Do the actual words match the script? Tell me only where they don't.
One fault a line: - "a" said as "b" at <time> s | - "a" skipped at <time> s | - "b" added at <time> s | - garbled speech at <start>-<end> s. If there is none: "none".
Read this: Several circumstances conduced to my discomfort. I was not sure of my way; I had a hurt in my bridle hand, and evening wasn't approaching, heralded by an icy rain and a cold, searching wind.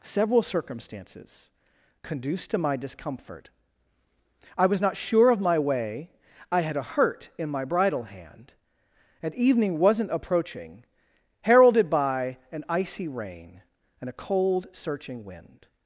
none